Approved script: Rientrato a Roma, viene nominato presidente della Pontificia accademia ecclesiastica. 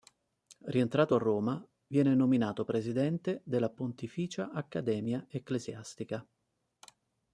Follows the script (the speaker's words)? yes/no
yes